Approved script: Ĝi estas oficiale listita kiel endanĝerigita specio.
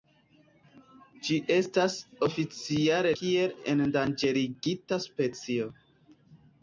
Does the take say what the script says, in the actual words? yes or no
no